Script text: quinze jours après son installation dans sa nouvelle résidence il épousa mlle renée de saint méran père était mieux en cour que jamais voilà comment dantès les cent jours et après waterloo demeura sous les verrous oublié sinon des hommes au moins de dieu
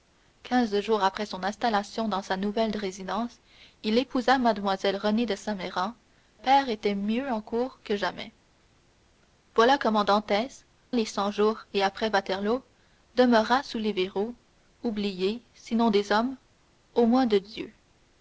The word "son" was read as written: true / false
true